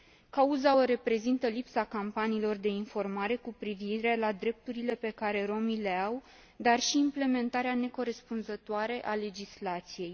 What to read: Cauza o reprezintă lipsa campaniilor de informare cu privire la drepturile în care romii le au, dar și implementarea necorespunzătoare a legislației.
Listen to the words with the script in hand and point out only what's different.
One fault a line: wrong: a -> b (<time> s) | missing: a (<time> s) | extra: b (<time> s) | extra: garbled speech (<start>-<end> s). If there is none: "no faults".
wrong: în -> pe (4.9 s)